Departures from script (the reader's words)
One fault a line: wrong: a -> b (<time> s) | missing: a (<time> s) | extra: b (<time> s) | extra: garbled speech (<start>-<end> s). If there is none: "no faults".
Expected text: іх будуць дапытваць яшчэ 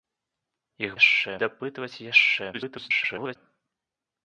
wrong: будуць -> яшчэ (1.0 s)
extra: garbled speech (2.5-3.4 s)